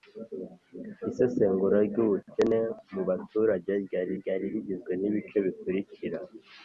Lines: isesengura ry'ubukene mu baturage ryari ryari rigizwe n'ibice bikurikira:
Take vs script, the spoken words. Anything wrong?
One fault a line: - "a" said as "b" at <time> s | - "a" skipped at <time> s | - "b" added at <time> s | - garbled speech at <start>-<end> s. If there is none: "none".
none